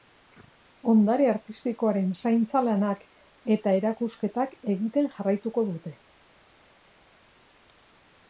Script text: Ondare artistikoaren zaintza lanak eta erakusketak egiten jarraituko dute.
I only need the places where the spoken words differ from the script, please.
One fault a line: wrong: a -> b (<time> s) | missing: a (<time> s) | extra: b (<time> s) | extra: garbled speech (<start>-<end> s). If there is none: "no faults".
no faults